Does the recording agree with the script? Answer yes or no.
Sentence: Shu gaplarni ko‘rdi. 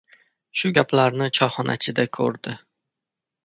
no